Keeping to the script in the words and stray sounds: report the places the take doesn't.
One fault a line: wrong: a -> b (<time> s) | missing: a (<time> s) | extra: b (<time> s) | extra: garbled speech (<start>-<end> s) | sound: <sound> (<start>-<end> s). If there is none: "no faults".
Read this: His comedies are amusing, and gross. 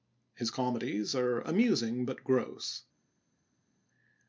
wrong: and -> but (2.0 s)